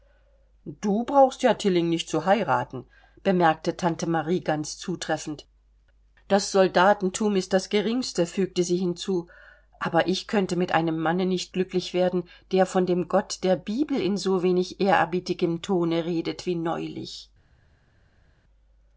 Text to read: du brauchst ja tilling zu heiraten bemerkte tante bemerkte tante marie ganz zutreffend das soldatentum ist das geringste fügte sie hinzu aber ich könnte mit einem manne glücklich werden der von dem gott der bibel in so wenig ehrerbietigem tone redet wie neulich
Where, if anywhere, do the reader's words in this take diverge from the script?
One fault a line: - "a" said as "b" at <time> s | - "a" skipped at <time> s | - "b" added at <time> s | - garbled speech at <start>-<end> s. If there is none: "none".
- "nicht" added at 1.9 s
- "bemerkte tante" skipped at 4.1 s
- "nicht" added at 11.3 s